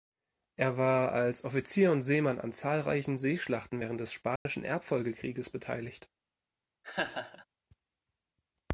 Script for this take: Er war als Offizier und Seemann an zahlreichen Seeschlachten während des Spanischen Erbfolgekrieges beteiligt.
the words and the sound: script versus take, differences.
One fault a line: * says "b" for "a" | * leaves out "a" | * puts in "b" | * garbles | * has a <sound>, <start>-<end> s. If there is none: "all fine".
* has a dropout, 4.4-4.5 s
* has a laugh, 6.8-7.5 s